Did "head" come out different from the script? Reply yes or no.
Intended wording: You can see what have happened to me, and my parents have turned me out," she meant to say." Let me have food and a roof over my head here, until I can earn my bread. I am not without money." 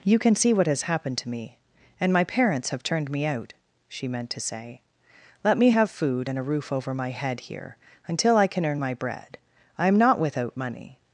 no